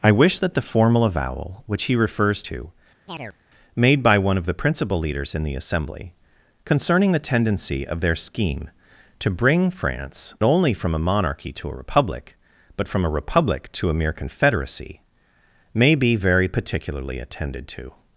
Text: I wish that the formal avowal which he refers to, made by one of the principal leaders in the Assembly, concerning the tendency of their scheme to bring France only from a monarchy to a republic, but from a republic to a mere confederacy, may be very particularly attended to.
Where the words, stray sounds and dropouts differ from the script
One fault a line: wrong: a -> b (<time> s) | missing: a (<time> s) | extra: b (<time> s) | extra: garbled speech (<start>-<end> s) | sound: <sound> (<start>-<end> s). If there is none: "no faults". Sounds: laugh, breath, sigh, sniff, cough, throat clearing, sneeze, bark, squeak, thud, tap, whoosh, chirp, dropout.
sound: chirp (3.1-3.4 s)